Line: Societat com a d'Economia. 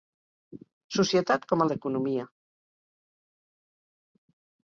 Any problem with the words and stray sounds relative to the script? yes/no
no